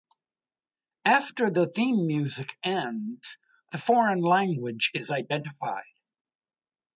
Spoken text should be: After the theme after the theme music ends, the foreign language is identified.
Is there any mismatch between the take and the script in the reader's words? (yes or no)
yes